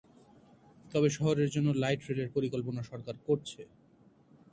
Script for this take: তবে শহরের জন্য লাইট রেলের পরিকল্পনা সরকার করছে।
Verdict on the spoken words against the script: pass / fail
pass